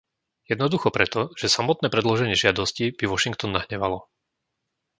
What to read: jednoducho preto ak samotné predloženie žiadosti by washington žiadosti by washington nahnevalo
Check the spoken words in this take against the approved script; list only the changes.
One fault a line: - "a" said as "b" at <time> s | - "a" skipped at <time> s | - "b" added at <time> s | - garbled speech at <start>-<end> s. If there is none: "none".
- "ak" said as "že" at 1.3 s
- "žiadosti by washington" skipped at 3.6 s